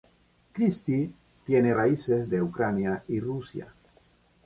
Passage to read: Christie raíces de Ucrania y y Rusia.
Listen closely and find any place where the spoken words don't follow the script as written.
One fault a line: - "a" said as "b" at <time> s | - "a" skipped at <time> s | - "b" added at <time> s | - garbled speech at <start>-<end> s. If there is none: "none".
- "tiene" added at 1.4 s
- "y" skipped at 3.2 s